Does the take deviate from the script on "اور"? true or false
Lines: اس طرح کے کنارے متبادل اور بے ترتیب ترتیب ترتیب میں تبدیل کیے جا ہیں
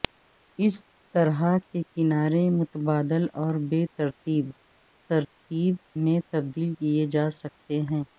false